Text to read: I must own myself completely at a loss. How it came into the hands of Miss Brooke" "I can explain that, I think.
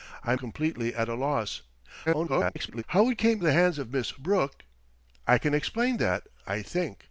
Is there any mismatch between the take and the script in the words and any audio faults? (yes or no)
yes